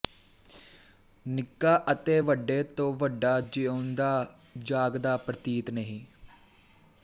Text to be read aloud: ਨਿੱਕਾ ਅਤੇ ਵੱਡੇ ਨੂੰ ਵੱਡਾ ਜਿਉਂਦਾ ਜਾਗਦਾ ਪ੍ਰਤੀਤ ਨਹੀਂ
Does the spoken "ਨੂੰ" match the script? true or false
false